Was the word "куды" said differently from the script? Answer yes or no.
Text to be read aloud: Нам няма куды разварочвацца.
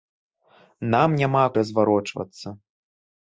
yes